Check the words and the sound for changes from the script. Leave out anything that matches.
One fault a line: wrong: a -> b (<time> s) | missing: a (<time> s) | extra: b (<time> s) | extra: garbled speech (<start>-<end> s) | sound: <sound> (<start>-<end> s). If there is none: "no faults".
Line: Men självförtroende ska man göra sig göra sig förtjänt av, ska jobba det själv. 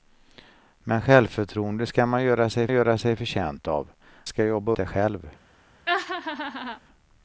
sound: laugh (5.9-6.8 s)